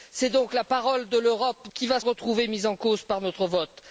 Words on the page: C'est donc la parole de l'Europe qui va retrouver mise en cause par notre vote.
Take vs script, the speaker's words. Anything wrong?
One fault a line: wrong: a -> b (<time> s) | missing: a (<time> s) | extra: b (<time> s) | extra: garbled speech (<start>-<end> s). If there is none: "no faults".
no faults